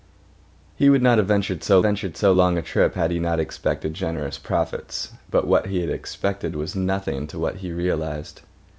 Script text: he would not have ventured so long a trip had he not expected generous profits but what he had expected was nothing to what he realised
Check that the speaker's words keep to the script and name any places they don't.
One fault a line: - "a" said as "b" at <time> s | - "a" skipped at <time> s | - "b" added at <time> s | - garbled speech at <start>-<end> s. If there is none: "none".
- "ventured so" added at 1.8 s